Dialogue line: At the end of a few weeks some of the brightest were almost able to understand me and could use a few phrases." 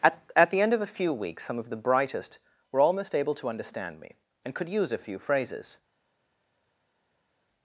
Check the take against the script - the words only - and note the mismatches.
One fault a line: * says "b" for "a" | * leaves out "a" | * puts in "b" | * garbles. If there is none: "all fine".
* puts in "at"